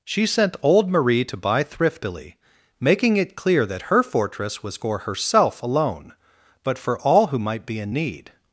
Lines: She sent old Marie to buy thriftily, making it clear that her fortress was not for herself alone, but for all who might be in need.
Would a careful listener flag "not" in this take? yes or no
yes